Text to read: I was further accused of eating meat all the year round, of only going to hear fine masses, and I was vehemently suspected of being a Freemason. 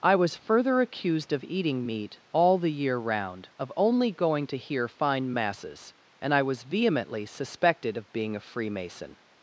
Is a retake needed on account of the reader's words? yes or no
no